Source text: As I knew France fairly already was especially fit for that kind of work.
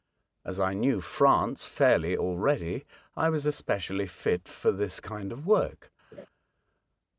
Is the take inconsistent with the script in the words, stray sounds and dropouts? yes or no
yes